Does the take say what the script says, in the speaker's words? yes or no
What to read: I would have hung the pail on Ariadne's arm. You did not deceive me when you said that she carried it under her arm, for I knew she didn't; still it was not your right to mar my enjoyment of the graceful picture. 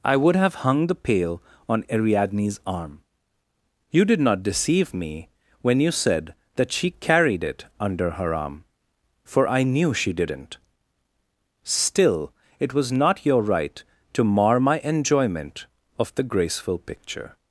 yes